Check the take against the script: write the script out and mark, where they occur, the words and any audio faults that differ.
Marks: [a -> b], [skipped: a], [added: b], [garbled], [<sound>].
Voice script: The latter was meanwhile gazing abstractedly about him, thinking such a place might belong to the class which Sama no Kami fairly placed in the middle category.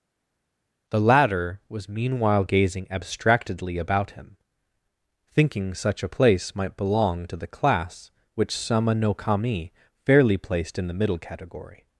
The latter was meanwhile gazing abstractedly about him, thinking such a place might belong to the class which Sama no Kami fairly placed in the middle category.